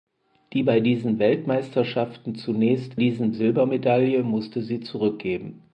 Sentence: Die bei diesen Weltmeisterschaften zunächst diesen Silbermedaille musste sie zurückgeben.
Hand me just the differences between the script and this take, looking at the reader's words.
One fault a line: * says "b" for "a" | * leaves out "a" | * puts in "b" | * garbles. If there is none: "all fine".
all fine